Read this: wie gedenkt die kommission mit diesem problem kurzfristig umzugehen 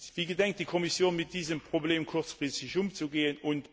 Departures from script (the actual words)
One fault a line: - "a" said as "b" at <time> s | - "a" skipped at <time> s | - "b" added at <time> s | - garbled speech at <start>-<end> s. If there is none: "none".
none